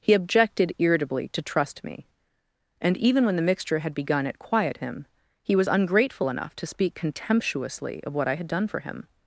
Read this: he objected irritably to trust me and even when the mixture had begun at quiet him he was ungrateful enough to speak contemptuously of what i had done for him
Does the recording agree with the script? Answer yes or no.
yes